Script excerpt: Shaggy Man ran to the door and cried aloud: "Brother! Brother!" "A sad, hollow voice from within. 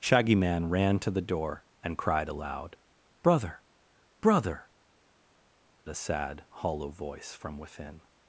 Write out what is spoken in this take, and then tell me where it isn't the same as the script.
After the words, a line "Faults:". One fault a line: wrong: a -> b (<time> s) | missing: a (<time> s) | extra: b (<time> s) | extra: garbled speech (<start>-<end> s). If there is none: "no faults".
Shaggy Man ran to the door and cried aloud: "Brother! Brother!" "A sad, hollow voice from within.
Faults:
no faults